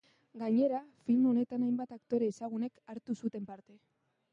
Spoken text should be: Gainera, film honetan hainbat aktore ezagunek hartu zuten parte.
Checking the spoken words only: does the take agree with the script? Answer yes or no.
yes